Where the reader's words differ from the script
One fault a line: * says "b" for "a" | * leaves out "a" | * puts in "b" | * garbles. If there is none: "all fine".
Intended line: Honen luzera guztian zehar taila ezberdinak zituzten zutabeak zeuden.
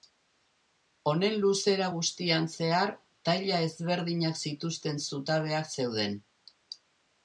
all fine